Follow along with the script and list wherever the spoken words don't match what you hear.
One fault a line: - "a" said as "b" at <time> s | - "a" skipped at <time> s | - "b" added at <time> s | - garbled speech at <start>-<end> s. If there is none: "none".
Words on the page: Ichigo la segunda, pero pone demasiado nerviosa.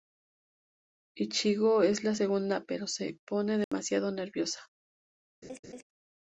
- "es" added at 1.8 s
- "se" added at 2.9 s